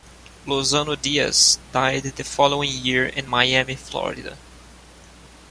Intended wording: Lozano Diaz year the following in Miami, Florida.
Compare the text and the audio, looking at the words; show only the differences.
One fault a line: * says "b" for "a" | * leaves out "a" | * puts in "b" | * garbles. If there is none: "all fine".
* says "died" for "year"
* puts in "year"